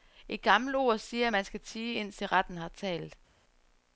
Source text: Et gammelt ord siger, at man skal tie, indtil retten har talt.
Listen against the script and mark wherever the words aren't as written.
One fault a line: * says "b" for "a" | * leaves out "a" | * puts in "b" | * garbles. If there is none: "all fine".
all fine